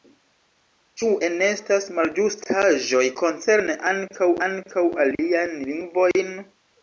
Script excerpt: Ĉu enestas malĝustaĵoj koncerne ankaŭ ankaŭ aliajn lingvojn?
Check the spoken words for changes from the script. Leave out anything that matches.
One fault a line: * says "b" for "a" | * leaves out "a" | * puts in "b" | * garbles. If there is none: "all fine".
all fine